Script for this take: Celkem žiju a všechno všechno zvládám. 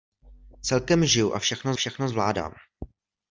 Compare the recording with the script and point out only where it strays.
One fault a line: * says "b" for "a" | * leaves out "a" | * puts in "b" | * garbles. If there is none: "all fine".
all fine